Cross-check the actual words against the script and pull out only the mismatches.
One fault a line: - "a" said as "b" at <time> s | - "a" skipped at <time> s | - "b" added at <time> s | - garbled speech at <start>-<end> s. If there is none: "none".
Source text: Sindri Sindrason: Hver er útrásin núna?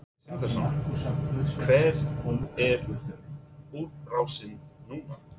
none